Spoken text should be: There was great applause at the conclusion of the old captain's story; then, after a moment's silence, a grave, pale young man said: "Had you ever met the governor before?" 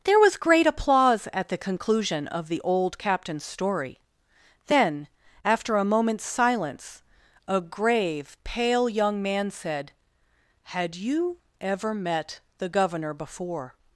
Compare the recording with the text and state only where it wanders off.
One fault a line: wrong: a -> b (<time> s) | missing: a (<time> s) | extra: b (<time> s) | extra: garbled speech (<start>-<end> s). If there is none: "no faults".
no faults